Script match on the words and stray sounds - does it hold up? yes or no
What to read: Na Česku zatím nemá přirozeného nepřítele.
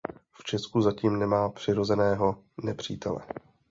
no